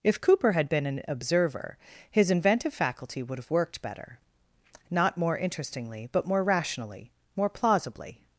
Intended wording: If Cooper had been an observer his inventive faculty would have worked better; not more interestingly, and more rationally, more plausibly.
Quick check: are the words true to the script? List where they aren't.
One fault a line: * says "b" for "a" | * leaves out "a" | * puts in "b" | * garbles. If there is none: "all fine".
* says "but" for "and"